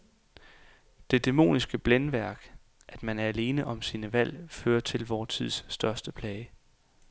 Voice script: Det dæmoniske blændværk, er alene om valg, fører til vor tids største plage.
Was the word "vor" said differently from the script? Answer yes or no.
no